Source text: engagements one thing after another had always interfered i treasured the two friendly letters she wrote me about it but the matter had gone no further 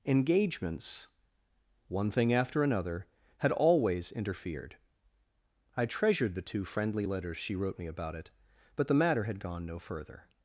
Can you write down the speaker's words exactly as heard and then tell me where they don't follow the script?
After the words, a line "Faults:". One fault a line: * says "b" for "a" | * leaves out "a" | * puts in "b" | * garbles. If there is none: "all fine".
engagements one thing after another had always interfered i treasured the two friendly letters she wrote me about it but the matter had gone no further
Faults:
all fine